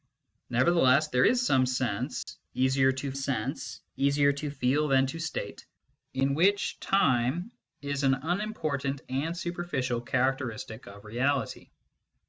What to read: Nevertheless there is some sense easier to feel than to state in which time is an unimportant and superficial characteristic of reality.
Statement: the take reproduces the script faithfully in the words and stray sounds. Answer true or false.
false